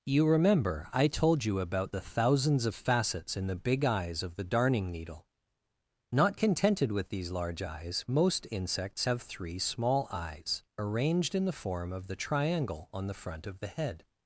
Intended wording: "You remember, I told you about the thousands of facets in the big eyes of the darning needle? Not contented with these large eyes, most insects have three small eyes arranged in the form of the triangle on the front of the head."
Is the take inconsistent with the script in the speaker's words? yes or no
no